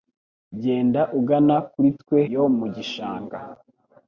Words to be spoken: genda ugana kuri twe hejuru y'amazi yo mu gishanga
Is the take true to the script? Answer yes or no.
no